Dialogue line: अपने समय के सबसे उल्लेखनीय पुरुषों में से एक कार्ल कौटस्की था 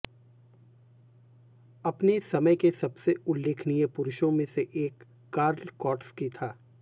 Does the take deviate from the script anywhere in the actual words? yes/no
no